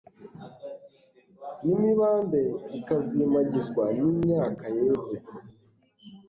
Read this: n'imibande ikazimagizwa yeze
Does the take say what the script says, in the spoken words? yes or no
no